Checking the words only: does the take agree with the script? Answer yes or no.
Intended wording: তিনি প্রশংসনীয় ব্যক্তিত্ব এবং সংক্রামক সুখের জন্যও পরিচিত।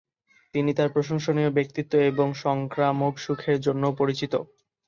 no